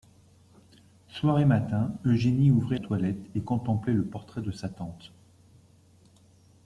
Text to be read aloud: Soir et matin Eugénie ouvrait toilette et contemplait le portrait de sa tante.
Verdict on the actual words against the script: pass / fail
pass